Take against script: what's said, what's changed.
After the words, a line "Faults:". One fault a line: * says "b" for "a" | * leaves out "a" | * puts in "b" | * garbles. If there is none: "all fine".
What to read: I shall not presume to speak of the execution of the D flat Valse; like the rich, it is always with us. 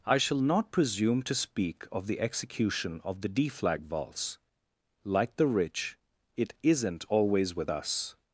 I shall not presume to speak of the execution of the D flag Valse; like the rich, it isn't always with us.
Faults:
* says "flag" for "flat"
* says "isn't" for "is"